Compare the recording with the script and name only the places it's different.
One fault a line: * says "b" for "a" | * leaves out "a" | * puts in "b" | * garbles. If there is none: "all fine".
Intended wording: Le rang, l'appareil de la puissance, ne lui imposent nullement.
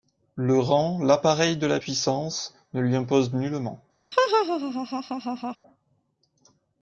all fine